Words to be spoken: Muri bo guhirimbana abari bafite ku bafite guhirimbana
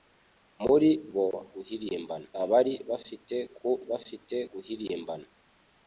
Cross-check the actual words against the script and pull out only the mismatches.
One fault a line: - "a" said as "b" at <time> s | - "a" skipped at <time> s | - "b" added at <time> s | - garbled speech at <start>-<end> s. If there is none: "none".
none